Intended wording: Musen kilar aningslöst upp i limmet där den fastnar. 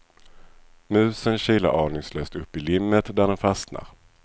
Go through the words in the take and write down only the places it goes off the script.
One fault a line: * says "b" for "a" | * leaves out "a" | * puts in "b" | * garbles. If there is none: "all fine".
all fine